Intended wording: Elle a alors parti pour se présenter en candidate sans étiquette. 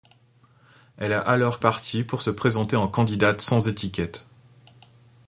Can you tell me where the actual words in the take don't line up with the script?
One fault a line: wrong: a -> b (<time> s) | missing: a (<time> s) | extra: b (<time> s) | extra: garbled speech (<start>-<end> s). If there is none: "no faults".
no faults